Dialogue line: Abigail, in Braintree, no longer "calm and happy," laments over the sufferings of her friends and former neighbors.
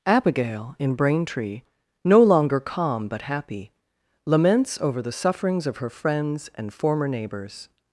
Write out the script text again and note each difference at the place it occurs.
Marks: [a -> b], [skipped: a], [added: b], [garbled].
Abigail, in Braintree, no longer "calm [and -> but] happy," laments over the sufferings of her friends and former neighbors.